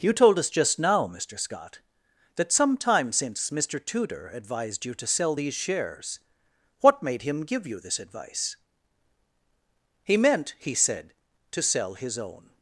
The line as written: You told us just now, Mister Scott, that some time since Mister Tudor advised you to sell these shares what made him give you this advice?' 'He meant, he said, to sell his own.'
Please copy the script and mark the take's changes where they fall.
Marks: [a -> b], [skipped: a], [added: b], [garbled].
You told us just now, Mister Scott, that some time since Mister Tudor advised you to sell these shares what made him give you this advice?' 'He meant, he said, to sell his own.'